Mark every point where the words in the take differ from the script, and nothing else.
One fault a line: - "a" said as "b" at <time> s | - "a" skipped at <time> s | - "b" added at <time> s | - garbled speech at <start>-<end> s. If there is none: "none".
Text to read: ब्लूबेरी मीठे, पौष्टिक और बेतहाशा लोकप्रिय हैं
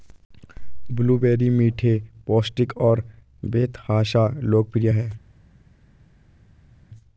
none